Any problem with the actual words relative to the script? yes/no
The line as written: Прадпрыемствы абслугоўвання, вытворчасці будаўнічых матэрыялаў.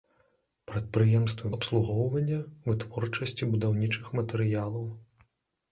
no